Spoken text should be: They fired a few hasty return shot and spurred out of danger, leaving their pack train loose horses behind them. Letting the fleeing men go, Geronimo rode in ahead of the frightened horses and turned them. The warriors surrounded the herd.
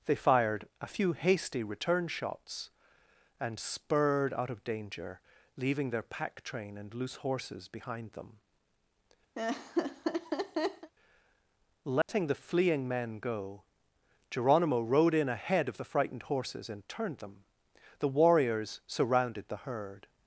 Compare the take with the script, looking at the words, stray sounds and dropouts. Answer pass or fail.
fail